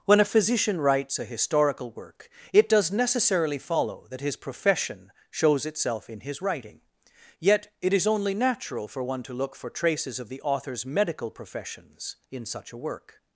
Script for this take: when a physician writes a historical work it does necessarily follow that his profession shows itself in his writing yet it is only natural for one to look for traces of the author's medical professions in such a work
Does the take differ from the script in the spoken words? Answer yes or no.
no